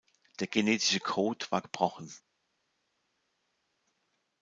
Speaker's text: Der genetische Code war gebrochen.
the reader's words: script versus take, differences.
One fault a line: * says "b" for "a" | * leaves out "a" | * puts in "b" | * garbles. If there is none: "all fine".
all fine